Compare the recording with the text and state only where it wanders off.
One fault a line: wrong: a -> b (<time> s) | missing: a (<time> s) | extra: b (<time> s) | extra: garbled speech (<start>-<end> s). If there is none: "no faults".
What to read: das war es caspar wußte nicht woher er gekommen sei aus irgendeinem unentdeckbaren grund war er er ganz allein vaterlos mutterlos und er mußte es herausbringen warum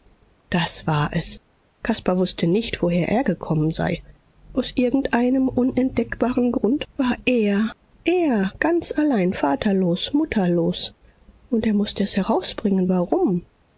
no faults